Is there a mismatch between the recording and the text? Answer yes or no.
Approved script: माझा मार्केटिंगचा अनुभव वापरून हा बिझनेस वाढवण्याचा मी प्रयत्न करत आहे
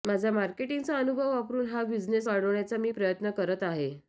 no